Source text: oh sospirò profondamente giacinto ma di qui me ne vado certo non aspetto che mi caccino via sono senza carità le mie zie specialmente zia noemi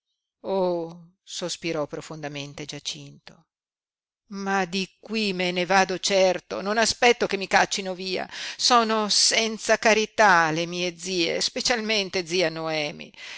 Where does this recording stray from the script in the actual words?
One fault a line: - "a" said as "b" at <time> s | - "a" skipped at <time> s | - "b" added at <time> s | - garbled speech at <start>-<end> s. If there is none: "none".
none